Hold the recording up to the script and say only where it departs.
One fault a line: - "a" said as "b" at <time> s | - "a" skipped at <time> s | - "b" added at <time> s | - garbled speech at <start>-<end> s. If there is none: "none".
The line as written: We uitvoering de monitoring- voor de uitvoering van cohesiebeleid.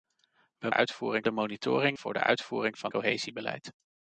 none